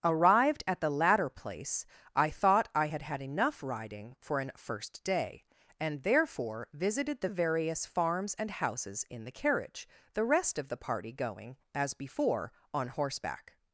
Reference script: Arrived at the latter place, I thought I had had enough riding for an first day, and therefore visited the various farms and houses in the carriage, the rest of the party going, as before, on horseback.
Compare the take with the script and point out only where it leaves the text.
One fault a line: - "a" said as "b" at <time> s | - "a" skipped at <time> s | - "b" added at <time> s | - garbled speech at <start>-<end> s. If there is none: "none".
none